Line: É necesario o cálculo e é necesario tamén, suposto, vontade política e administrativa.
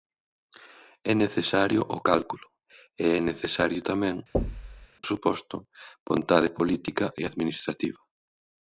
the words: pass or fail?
pass